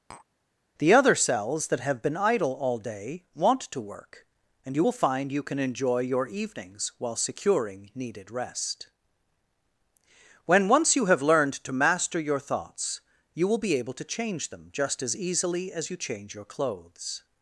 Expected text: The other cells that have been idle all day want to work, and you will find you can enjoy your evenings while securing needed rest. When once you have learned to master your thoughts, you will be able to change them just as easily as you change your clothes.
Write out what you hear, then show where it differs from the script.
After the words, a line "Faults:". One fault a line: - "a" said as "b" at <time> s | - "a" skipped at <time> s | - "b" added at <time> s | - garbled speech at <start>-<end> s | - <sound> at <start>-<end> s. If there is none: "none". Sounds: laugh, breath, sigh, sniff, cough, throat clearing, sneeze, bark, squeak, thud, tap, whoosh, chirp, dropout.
The other cells that have been idle all day want to work, and you will find you can enjoy your evenings while securing needed rest. When once you have learned to master your thoughts, you will be able to change them just as easily as you change your clothes.
Faults:
- tap at 0.1-0.3 s